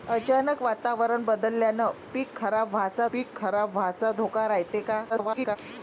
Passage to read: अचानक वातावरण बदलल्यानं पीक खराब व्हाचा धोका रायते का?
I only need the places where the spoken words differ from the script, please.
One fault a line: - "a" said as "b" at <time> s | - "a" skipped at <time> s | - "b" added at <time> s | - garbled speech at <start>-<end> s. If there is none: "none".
- "पीक खराब व्हाचा" added at 3.1 s
- garbled speech at 5.1-5.6 s